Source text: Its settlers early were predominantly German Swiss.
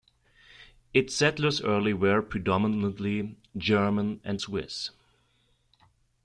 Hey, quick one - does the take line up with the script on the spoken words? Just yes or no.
no